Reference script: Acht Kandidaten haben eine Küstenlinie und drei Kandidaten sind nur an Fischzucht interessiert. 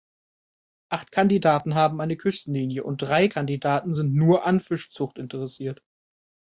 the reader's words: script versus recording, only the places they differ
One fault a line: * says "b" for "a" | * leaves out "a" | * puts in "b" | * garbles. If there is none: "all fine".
all fine